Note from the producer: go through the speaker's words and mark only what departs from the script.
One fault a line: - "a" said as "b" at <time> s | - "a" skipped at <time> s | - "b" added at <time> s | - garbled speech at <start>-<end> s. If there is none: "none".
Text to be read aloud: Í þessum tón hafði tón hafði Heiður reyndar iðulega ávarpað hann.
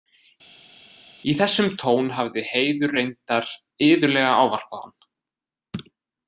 - "tón hafði" skipped at 2.4 s